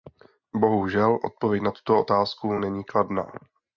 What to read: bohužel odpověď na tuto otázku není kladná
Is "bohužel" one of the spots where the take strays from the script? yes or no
no